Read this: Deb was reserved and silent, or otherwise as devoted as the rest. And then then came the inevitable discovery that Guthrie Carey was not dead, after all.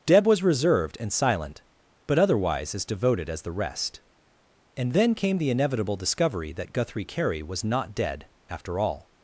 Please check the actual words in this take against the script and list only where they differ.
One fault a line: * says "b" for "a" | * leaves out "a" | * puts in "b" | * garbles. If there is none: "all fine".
* says "but" for "or"
* leaves out "then"